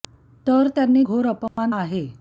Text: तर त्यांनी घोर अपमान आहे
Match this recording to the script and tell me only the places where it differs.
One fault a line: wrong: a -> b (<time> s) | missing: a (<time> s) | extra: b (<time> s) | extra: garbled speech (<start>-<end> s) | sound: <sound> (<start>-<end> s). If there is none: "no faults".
sound: dropout (1.5-1.6 s)